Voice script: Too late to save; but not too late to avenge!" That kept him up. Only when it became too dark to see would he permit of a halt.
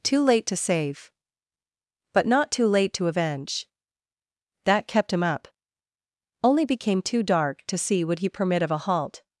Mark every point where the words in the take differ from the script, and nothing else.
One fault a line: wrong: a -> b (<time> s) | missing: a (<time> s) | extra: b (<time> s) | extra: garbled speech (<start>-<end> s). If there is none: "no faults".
missing: when it (6.7 s)